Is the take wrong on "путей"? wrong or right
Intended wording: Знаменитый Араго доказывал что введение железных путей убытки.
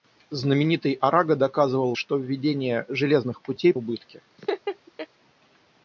right